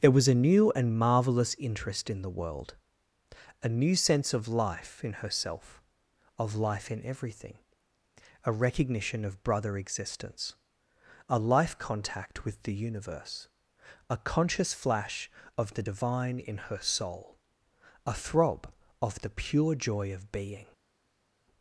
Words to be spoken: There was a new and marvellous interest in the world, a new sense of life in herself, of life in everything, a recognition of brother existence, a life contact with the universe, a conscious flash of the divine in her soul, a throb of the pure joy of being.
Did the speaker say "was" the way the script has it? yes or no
yes